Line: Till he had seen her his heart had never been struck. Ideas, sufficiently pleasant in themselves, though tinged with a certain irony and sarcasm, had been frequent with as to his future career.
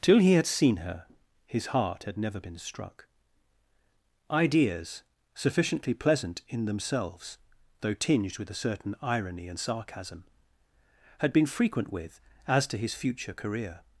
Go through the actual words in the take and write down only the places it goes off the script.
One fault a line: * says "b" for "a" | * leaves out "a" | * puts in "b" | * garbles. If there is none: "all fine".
all fine